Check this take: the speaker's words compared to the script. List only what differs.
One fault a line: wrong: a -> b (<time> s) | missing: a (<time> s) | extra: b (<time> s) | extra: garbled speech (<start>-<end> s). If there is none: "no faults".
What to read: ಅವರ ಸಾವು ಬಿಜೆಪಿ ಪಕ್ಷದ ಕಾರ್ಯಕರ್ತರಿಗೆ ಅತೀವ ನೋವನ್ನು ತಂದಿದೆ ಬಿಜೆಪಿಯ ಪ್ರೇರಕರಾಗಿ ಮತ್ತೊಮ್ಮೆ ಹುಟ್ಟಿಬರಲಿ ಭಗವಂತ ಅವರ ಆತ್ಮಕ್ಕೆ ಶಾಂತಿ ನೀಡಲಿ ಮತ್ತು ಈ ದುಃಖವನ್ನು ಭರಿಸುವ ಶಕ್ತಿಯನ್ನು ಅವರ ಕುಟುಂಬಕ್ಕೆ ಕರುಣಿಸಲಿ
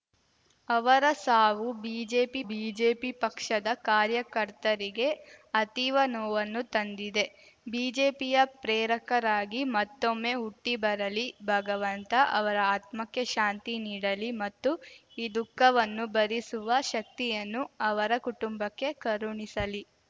extra: ಬಿಜೆಪಿ (2.5 s)